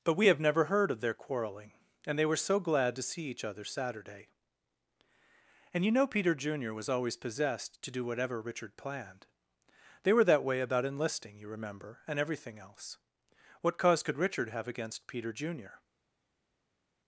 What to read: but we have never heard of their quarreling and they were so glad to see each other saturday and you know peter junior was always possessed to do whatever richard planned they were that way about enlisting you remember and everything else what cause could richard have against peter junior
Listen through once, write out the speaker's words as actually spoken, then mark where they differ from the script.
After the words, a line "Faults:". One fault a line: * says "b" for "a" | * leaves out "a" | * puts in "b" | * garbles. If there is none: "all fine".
but we have never heard of their quarreling and they were so glad to see each other saturday and you know peter junior was always possessed to do whatever richard planned they were that way about enlisting you remember and everything else what cause could richard have against peter junior
Faults:
all fine